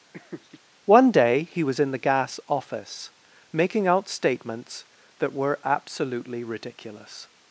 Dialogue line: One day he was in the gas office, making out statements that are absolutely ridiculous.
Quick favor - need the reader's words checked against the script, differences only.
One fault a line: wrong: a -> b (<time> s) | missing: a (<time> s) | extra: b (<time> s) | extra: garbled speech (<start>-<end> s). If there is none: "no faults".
wrong: are -> were (5.3 s)